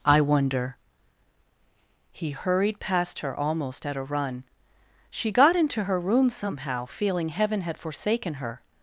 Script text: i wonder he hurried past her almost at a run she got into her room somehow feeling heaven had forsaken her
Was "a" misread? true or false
false